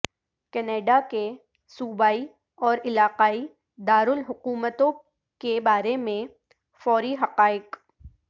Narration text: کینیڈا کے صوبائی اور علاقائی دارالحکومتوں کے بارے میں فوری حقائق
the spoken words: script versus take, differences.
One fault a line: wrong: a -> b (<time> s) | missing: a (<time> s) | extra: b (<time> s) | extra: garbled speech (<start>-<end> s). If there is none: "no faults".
no faults